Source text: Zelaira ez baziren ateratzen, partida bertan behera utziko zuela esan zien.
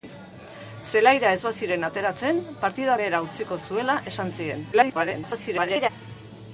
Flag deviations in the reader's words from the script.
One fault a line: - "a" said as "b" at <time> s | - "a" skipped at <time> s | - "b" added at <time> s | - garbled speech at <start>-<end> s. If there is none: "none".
- "bertan" skipped at 3.0 s
- garbled speech at 4.7-5.9 s